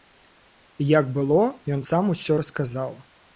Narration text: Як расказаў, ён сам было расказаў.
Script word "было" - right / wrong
wrong